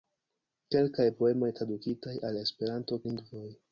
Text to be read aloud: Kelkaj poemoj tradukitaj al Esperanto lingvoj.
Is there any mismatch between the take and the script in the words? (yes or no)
no